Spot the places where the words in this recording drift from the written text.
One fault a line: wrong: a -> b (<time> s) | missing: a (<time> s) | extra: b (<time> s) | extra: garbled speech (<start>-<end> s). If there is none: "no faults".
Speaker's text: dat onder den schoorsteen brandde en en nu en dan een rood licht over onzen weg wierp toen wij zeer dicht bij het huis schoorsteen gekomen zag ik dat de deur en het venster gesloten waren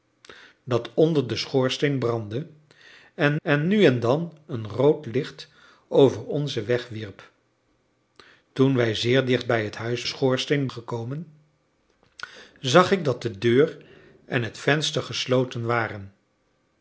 no faults